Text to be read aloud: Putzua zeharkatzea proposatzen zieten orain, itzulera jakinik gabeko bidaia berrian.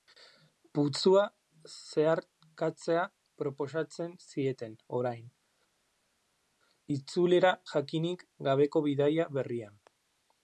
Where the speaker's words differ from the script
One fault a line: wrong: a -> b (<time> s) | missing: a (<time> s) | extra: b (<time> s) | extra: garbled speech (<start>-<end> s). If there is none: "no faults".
no faults